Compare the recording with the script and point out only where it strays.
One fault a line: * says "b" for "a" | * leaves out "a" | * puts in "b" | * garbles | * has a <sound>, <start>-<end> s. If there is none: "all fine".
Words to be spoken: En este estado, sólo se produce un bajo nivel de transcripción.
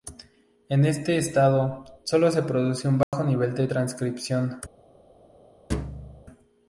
* has a dropout, 3.0-3.1 s
* has a thud, 5.7-6.2 s